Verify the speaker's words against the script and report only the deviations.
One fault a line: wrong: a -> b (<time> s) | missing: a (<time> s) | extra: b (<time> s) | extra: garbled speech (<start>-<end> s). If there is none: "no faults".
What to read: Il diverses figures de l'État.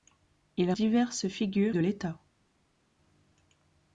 no faults